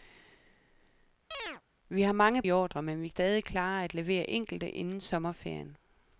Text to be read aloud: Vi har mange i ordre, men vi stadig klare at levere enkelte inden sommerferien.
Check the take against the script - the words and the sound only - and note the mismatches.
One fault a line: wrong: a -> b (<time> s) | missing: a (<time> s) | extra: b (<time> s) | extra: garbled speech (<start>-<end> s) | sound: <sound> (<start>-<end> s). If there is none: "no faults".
sound: chirp (1.3-1.6 s)